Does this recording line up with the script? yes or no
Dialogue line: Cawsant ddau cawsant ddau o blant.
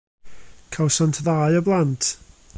no